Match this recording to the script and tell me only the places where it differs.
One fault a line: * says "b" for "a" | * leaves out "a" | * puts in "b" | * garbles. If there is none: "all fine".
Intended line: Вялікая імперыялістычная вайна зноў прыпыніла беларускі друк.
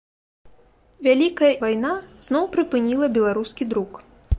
* leaves out "імперыялістычная"